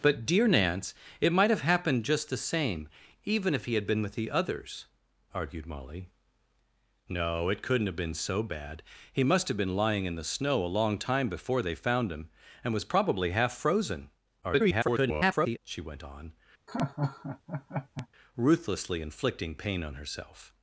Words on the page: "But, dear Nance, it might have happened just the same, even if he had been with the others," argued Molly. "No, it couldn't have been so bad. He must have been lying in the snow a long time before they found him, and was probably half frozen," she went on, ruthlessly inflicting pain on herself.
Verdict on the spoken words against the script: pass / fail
fail